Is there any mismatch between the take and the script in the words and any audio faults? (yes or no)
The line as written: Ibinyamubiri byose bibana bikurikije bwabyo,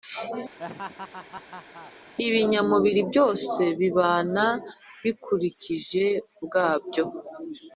yes